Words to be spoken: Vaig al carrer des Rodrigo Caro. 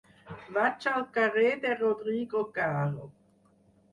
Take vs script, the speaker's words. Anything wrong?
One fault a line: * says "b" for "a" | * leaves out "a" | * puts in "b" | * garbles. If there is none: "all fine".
* says "de" for "des"